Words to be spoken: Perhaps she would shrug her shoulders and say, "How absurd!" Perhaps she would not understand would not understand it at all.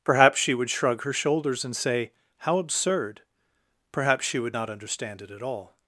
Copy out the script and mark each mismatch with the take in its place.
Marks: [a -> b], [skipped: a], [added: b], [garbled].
Perhaps she would shrug her shoulders and say, "How absurd!" Perhaps she would not understand [skipped: would not understand] it at all.